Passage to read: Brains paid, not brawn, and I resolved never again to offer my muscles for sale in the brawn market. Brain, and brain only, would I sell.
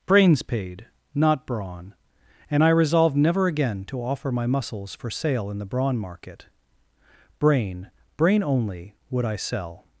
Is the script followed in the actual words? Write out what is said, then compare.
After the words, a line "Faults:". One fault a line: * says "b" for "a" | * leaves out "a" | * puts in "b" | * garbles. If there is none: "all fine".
Brains paid, not brawn, and I resolved never again to offer my muscles for sale in the brawn market. Brain, brain only, would I sell.
Faults:
* leaves out "and"